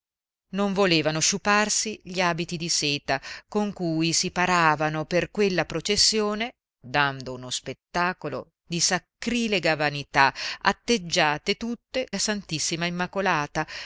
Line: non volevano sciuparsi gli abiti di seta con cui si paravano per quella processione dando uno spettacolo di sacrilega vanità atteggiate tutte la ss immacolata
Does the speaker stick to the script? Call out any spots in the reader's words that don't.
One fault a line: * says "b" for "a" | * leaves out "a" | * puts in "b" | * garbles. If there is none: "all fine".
all fine